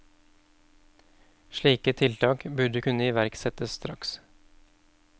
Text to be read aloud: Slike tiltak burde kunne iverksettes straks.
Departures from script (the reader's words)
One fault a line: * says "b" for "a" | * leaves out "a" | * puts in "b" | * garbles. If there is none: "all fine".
all fine